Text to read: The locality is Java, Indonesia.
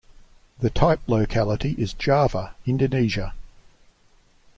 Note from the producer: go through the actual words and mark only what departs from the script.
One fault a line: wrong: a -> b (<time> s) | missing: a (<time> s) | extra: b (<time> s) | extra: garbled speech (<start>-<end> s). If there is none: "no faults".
extra: type (0.7 s)